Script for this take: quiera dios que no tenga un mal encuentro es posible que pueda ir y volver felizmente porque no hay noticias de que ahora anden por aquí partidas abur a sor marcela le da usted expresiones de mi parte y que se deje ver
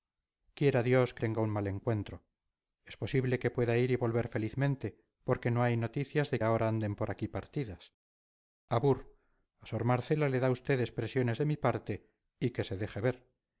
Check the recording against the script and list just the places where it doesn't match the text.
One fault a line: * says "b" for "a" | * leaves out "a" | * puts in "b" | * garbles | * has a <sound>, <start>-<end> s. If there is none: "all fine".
* leaves out "no"
* leaves out "que"